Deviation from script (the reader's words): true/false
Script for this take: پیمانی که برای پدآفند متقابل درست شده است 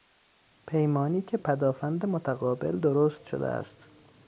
true